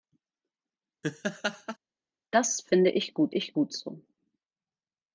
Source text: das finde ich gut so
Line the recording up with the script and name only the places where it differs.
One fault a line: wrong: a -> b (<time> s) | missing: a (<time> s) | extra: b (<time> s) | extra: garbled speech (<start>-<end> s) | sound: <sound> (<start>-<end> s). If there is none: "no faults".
sound: laugh (1.0-1.8 s)
extra: ich gut (3.3 s)